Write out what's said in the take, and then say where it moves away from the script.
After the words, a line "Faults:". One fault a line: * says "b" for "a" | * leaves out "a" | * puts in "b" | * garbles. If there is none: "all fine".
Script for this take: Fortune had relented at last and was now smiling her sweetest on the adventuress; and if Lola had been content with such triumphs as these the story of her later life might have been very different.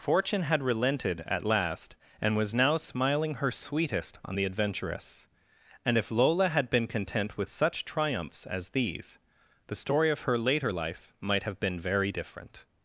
Fortune had relented at last and was now smiling her sweetest on the adventuress; and if Lola had been content with such triumphs as these the story of her later life might have been very different.
Faults:
all fine